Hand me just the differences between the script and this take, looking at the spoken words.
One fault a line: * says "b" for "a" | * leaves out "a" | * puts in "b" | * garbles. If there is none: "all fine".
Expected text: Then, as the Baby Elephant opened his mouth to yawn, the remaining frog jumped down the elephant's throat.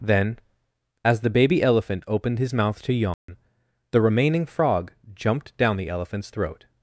all fine